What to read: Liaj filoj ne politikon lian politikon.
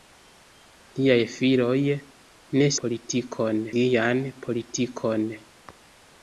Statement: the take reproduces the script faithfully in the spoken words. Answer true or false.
true